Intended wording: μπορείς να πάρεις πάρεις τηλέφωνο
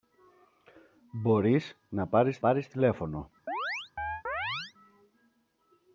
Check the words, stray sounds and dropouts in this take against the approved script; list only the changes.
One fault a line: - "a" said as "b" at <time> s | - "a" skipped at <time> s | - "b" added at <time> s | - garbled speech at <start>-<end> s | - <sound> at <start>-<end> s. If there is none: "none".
- chirp at 3.5-4.7 s